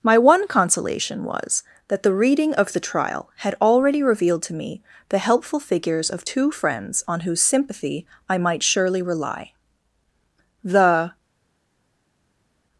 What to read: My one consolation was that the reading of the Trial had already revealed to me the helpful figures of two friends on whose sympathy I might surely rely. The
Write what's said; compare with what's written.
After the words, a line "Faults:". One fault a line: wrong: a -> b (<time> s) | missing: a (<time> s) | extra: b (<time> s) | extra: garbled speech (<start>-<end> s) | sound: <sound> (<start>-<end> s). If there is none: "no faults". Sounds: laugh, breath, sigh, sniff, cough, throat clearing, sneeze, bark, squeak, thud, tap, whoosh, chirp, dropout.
My one consolation was that the reading of the Trial had already revealed to me the helpful figures of two friends on whose sympathy I might surely rely. The
Faults:
no faults